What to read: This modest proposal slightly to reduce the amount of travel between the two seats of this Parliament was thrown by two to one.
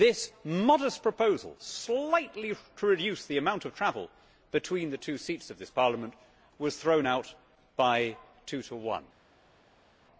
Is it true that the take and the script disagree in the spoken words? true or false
true